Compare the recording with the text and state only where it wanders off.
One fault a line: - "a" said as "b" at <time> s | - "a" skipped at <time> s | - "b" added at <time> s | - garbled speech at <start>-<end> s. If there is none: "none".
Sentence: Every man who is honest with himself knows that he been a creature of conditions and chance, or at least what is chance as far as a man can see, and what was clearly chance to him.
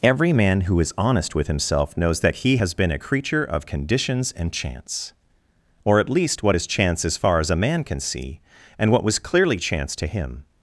- "has" added at 2.5 s